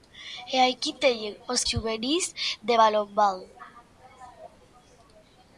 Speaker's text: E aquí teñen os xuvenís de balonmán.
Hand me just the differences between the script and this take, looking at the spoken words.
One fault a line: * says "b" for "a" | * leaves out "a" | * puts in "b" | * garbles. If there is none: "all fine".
all fine